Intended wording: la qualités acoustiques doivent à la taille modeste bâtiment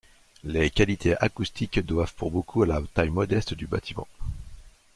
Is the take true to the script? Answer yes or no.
no